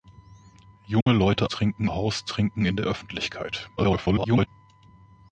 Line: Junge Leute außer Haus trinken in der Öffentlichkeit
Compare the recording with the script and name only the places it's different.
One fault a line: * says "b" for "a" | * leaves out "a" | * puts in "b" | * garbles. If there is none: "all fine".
* says "trinken" for "außer"
* garbles